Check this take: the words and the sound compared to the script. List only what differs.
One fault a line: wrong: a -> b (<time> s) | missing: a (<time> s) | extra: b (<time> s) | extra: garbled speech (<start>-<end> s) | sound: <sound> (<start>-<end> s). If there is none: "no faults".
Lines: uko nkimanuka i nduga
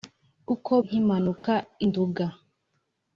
sound: dropout (1.4-1.4 s)